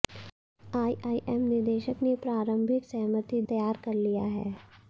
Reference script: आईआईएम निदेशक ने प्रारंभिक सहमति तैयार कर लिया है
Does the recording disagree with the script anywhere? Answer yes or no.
no